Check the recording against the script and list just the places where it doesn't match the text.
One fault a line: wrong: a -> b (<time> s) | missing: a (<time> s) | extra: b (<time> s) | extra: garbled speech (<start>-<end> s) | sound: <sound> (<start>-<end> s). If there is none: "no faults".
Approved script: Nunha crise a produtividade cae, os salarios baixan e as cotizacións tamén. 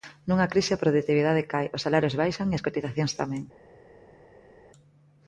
no faults